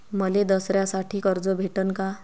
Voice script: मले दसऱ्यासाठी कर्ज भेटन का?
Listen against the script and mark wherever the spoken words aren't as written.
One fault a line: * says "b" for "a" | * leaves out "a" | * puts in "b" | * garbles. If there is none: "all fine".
all fine